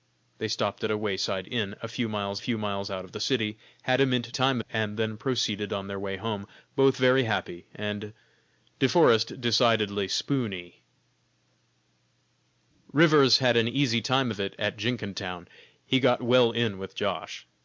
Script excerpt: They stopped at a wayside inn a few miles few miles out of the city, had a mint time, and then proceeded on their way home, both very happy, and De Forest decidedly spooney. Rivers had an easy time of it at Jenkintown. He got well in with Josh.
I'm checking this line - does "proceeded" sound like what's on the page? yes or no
yes